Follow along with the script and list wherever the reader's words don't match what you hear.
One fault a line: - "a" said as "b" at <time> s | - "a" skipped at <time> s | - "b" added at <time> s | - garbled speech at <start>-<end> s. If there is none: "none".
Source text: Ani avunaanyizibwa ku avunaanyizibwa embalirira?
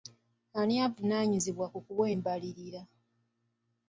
- "avunaanyizibwa" said as "kuwa" at 1.8 s